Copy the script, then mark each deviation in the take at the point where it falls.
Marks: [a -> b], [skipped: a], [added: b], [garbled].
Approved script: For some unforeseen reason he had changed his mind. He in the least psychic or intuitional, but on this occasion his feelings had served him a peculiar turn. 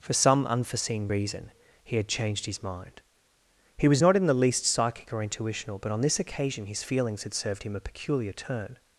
For some unforeseen reason he had changed his mind. He [added: was not] in the least psychic or intuitional, but on this occasion his feelings had served him a peculiar turn.